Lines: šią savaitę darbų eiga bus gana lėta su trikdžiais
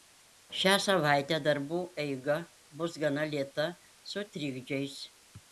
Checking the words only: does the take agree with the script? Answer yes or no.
yes